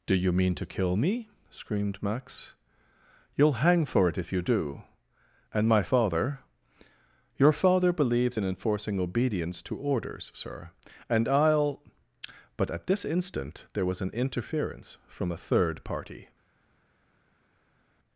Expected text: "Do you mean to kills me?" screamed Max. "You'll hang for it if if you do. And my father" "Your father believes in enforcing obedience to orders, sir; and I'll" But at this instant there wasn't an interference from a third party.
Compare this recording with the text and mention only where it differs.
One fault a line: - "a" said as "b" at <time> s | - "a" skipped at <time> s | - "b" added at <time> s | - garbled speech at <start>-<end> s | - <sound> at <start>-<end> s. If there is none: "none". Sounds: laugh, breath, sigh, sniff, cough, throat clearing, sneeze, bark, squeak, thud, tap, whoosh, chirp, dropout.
- "kills" said as "kill" at 0.7 s
- "if" skipped at 4.3 s
- "wasn't" said as "was" at 13.9 s